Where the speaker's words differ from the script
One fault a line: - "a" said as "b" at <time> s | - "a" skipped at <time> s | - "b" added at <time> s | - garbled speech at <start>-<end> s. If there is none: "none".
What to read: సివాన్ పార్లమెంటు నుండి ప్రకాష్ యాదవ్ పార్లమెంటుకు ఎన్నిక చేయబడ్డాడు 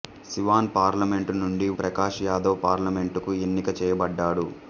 none